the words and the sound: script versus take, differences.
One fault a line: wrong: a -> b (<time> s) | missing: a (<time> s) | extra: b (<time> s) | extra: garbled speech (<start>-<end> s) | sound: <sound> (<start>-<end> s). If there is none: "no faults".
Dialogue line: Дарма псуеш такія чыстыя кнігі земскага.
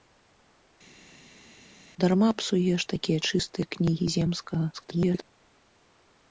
extra: garbled speech (4.7-5.3 s)